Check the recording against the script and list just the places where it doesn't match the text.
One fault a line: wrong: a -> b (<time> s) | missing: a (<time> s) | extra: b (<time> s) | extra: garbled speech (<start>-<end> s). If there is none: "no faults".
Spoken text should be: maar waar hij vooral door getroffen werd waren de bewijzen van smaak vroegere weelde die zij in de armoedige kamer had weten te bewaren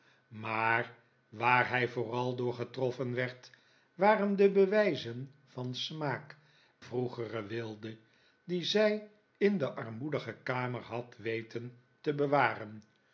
no faults